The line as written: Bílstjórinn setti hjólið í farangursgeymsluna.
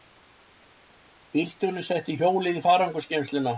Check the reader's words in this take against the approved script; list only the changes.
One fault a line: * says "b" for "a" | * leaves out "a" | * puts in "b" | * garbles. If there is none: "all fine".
all fine